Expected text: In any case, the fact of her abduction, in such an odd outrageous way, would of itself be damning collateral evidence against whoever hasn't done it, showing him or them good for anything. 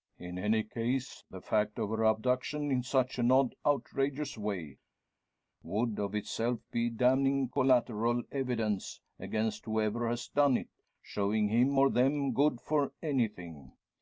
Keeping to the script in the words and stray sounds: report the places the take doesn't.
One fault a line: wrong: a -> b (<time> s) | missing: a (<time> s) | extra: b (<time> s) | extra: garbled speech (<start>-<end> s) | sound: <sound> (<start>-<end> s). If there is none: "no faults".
wrong: hasn't -> has (10.1 s)